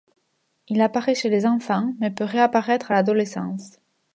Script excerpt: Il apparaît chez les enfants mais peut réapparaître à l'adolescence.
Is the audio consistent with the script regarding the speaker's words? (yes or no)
yes